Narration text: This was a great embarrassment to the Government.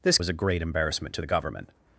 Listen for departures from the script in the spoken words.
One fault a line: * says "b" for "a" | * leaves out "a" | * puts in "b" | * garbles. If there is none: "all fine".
all fine